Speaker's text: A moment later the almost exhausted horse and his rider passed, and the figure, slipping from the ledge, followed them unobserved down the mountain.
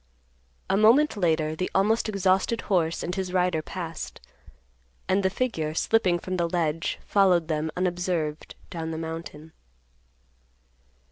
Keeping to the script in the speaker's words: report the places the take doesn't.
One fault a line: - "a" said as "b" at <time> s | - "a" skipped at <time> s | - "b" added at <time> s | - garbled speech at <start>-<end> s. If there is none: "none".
none